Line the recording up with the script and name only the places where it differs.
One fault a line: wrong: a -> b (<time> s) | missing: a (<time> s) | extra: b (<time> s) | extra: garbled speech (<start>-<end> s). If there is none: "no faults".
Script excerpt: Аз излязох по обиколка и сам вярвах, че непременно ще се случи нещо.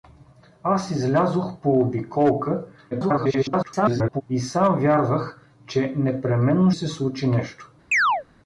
extra: garbled speech (2.9-4.2 s)
missing: ще (6.7 s)